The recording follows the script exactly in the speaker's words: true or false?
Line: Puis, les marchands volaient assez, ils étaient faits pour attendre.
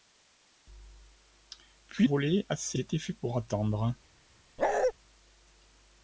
false